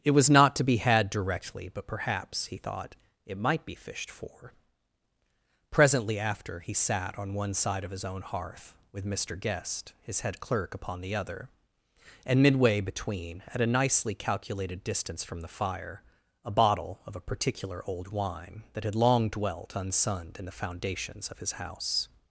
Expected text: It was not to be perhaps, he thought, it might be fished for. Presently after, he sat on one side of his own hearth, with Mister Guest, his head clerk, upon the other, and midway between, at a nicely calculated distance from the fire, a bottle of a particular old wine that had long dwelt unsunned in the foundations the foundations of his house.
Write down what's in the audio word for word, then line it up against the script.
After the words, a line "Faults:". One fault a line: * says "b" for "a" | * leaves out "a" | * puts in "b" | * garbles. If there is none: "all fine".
It was not to be had directly; but perhaps, he thought, it might be fished for. Presently after, he sat on one side of his own hearth, with Mister Guest, his head clerk, upon the other, and midway between, at a nicely calculated distance from the fire, a bottle of a particular old wine that had long dwelt unsunned in the foundations of his house.
Faults:
* puts in "had directly but"
* leaves out "the foundations"